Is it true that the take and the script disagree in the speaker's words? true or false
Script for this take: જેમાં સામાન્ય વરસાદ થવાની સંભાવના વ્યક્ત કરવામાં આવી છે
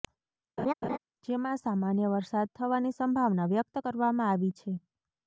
false